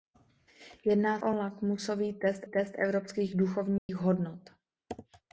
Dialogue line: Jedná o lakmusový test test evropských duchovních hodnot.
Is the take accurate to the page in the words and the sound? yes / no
no